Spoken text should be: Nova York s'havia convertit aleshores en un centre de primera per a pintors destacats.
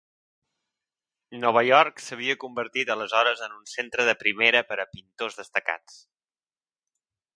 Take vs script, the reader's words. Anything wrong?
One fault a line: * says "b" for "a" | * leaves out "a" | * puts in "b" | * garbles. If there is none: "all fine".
all fine